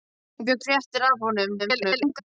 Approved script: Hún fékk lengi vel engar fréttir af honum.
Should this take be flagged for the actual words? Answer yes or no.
yes